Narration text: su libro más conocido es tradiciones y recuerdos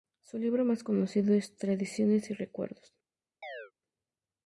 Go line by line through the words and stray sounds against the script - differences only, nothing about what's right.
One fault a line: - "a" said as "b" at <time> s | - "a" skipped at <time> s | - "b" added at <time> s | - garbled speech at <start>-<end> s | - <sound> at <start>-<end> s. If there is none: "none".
- chirp at 3.4-3.7 s